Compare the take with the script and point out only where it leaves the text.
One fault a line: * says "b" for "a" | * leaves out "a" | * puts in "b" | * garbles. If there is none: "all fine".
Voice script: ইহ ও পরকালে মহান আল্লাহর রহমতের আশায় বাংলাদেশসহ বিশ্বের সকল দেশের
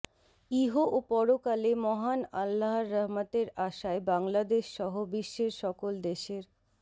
all fine